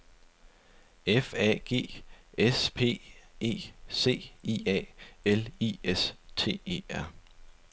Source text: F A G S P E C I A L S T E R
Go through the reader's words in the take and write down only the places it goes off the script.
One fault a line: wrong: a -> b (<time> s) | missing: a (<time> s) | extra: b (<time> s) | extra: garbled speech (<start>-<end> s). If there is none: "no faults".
extra: I (5.6 s)